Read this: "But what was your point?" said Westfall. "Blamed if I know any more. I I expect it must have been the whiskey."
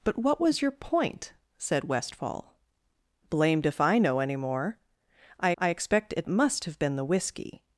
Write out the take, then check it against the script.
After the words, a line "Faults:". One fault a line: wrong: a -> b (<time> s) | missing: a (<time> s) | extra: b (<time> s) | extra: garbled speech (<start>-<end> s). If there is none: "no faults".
"But what was your point?" said Westfall. "Blamed if I know any more. I I expect it must have been the whiskey."
Faults:
no faults